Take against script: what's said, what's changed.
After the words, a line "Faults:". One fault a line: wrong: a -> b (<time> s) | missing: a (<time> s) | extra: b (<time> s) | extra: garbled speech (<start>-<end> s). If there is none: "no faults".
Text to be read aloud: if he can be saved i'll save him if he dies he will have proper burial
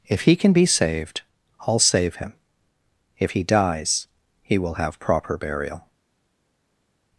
if he can be saved i'll save him if he dies he will have proper burial
Faults:
no faults